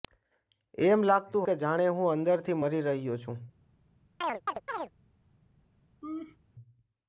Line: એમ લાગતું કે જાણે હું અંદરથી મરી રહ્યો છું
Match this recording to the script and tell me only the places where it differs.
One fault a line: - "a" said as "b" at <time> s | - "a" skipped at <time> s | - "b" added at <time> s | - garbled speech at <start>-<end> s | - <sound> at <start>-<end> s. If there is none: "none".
- chirp at 4.2-4.9 s
- laugh at 6.0-6.4 s